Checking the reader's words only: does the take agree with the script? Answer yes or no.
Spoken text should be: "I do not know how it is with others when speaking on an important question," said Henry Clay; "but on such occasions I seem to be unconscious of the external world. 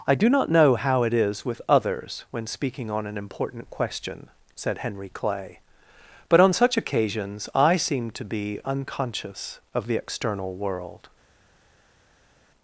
yes